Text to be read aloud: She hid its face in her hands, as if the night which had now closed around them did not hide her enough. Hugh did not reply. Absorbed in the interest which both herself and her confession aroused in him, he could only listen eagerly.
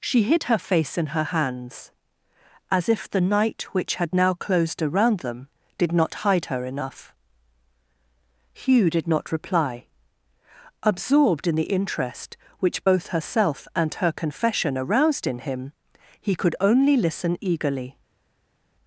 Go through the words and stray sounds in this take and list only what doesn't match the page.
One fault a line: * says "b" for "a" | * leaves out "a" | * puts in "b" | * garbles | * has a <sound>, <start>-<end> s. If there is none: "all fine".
* says "her" for "its"